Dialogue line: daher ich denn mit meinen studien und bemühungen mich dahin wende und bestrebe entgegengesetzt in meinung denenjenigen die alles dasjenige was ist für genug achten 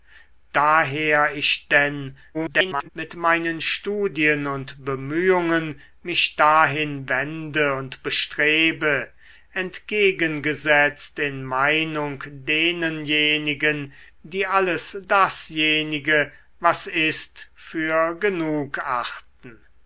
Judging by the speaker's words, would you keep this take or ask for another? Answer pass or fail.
fail